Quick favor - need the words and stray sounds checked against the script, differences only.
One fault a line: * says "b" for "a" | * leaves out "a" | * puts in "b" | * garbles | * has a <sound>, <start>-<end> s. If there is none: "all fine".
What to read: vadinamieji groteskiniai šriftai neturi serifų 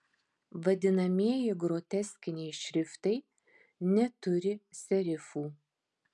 all fine